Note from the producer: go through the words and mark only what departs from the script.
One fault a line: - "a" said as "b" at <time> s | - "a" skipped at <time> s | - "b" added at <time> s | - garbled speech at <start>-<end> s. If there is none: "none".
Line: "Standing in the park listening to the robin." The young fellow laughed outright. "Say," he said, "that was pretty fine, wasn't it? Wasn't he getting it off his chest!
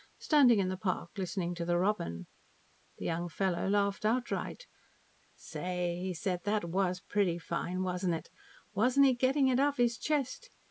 none